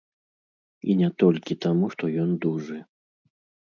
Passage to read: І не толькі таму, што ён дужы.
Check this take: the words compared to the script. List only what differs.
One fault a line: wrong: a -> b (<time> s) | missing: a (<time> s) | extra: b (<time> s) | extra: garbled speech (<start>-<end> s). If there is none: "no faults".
no faults